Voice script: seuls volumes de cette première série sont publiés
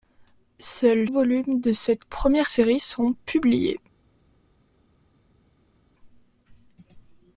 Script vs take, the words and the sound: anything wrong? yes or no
no